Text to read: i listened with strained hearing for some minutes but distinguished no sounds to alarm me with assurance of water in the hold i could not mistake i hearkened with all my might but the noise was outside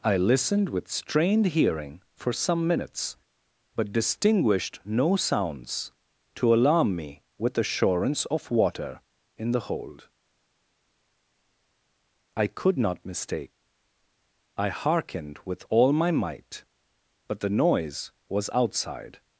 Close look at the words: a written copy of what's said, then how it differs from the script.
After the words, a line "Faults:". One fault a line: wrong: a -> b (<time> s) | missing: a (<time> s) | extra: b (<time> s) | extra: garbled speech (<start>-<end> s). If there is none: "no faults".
i listened with strained hearing for some minutes but distinguished no sounds to alarm me with assurance of water in the hold i could not mistake i hearkened with all my might but the noise was outside
Faults:
no faults